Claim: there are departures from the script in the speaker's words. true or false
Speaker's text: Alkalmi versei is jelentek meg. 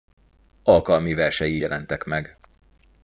true